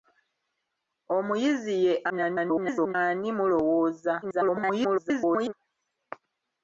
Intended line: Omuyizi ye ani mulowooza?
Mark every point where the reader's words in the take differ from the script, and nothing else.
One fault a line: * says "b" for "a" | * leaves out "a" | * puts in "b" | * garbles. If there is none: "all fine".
* garbles
* garbles